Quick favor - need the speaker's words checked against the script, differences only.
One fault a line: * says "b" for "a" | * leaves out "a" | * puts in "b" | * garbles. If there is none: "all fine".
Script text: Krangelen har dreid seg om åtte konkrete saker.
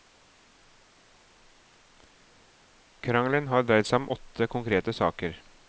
all fine